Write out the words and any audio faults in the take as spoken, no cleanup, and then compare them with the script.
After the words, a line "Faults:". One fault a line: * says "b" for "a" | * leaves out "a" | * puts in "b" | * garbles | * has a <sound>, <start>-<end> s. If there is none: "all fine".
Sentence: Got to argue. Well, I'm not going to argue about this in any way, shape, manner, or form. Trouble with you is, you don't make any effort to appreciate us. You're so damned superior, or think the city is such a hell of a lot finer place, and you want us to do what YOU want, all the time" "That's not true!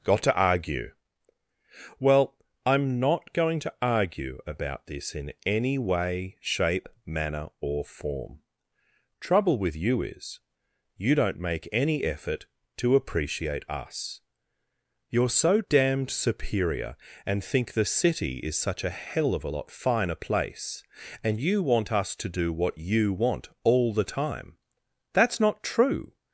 Got to argue. Well, I'm not going to argue about this in any way, shape, manner, or form. Trouble with you is, you don't make any effort to appreciate us. You're so damned superior, and think the city is such a hell of a lot finer place, and you want us to do what YOU want, all the time" "That's not true!
Faults:
* says "and" for "or"